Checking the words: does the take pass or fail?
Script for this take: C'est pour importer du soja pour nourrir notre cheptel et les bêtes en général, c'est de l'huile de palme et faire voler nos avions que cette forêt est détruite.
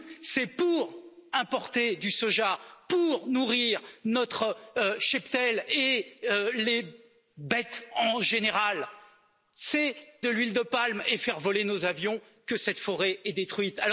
pass